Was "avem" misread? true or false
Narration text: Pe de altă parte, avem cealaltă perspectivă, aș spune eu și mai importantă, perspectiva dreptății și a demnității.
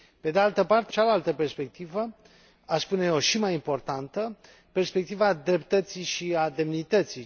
true